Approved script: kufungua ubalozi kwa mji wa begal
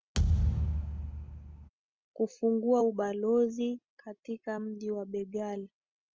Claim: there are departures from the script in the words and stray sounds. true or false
true